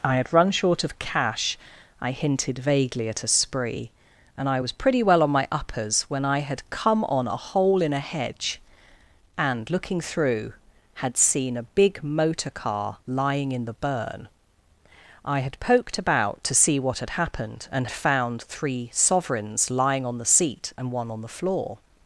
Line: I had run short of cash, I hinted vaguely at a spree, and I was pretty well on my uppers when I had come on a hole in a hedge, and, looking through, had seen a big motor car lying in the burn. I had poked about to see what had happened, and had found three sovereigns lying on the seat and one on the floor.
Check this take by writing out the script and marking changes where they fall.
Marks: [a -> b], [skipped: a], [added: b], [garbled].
I had run short of cash, I hinted vaguely at a spree, and I was pretty well on my uppers when I had come on a hole in a hedge, and, looking through, had seen a big motor car lying in the burn. I had poked about to see what had happened, and [skipped: had] found three sovereigns lying on the seat and one on the floor.